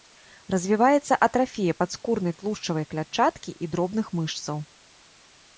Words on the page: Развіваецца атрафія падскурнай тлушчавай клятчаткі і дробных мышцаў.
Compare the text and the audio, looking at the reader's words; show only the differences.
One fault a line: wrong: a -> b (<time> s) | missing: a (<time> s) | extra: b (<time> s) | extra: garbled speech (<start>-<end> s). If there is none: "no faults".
no faults